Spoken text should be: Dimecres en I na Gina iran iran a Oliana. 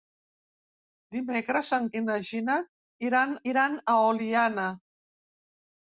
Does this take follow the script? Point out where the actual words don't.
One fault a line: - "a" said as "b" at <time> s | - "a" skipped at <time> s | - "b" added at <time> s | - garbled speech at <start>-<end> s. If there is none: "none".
none